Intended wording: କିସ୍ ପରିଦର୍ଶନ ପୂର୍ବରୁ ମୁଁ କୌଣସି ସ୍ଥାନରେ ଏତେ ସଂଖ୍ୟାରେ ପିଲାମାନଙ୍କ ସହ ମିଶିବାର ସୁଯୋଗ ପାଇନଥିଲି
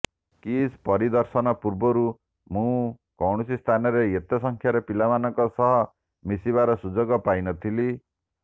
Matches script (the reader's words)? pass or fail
pass